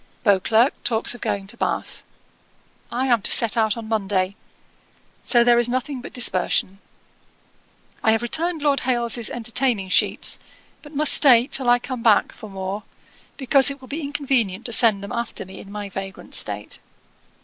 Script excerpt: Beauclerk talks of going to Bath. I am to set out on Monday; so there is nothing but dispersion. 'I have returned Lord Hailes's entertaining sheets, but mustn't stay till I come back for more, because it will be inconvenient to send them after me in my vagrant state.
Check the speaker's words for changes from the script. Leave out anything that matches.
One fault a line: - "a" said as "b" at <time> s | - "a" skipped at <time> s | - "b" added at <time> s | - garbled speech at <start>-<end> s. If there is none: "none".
- "mustn't" said as "must" at 10.9 s